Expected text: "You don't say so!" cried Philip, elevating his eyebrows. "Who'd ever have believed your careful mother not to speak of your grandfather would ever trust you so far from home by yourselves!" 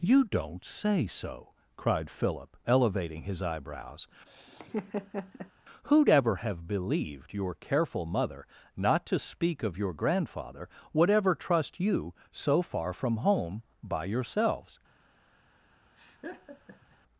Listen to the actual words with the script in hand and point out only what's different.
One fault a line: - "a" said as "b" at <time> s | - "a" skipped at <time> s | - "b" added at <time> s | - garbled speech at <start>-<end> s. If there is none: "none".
none